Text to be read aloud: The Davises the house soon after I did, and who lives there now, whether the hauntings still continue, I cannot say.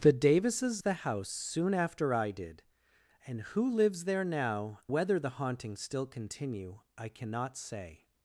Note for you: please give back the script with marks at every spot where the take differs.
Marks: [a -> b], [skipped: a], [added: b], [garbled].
The Davises the house soon after I did, and who lives there now, whether the hauntings still continue, I cannot say.